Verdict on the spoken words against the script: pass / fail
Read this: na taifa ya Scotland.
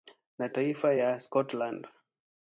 pass